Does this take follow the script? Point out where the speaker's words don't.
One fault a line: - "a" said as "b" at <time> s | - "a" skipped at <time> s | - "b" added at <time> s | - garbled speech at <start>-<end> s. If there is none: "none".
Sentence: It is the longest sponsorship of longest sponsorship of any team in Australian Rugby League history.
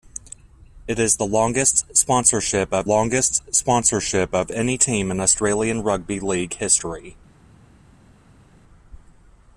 none